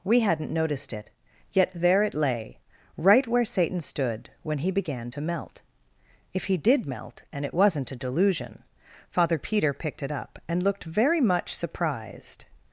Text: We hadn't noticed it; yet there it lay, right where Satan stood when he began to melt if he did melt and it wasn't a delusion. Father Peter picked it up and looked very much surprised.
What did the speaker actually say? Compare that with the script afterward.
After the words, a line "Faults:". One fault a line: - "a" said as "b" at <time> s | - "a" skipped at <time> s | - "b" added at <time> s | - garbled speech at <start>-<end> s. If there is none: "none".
We hadn't noticed it; yet there it lay, right where Satan stood when he began to melt if he did melt and it wasn't a delusion. Father Peter picked it up and looked very much surprised.
Faults:
none